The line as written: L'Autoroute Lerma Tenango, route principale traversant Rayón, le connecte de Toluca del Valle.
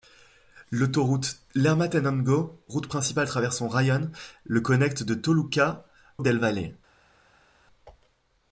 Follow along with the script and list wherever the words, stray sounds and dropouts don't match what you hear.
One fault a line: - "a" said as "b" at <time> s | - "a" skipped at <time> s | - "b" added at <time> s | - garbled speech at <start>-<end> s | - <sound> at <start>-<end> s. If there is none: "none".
none